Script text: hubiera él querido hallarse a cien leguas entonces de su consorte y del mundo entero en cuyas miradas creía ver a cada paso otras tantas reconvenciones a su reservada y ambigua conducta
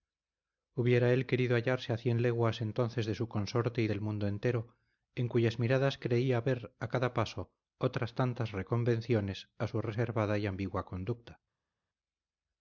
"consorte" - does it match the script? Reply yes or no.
yes